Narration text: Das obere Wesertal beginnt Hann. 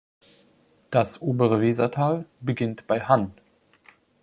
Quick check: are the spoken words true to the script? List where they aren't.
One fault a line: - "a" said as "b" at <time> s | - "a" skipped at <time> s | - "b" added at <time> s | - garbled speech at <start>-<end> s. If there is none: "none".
- "bei" added at 2.9 s